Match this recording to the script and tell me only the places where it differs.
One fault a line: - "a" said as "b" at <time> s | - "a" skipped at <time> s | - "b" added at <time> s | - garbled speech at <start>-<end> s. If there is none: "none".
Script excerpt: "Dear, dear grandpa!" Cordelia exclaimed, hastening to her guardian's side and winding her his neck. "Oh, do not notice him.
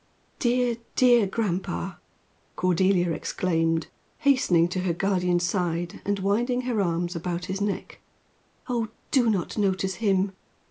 - "arms about" added at 6.8 s